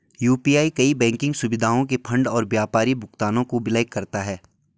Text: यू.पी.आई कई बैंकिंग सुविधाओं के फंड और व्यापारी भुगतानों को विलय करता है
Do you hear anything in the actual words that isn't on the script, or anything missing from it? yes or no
no